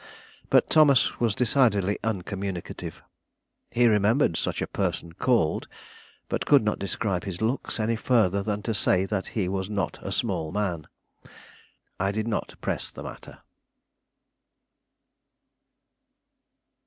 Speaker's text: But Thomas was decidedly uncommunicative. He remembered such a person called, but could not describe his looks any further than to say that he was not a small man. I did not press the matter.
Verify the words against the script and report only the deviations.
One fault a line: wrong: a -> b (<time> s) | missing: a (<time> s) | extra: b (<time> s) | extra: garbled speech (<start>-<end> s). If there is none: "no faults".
no faults